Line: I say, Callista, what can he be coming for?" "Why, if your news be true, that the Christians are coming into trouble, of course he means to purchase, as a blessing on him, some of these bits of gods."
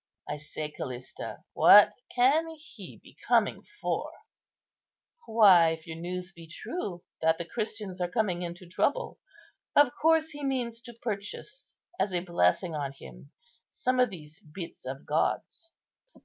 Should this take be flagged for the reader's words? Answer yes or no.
no